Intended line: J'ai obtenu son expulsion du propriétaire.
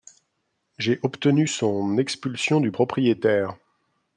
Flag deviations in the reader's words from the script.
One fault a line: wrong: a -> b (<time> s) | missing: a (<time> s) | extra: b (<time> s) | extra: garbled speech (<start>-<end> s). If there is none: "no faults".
no faults